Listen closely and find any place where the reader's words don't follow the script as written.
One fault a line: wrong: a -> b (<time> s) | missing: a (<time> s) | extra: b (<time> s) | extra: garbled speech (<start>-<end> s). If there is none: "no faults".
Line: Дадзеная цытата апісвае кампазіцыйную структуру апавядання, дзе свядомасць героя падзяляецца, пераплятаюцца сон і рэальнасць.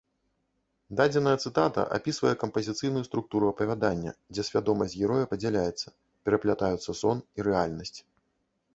no faults